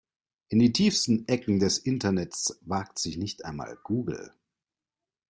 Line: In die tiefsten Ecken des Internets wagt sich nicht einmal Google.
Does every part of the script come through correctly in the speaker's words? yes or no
yes